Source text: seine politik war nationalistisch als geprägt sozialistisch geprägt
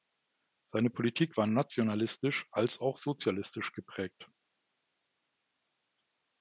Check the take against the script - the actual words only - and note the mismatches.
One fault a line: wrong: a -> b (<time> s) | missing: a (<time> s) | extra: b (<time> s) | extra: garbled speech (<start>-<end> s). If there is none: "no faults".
wrong: geprägt -> auch (2.8 s)